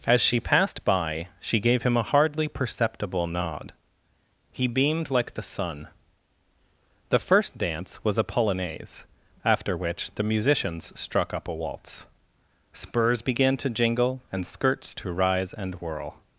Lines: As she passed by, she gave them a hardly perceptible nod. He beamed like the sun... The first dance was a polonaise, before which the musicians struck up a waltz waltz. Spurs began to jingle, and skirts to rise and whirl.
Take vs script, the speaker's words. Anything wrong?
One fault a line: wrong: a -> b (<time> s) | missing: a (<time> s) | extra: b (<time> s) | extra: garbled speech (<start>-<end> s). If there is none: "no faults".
wrong: them -> him (1.8 s)
wrong: before -> after (9.4 s)
missing: waltz (12.1 s)